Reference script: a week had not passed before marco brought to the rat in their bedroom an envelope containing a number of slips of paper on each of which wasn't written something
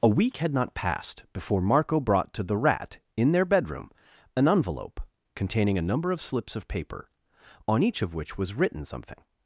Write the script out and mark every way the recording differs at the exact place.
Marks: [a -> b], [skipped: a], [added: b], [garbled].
a week had not passed before marco brought to the rat in their bedroom an envelope containing a number of slips of paper on each of which [wasn't -> was] written something